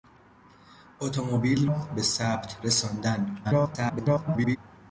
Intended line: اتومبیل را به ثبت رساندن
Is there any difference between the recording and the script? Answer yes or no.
yes